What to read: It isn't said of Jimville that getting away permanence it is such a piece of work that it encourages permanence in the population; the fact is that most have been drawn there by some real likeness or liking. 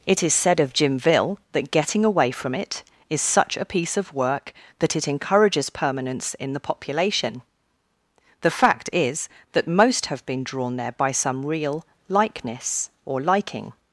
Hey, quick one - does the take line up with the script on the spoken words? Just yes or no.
no